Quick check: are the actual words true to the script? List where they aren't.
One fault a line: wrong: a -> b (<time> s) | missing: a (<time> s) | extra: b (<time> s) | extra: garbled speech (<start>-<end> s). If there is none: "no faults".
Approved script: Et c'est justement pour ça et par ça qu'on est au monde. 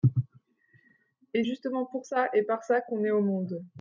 missing: c'est (1.4 s)